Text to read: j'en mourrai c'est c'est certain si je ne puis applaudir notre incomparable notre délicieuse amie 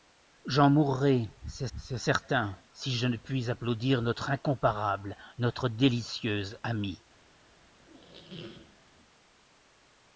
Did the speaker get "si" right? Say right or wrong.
right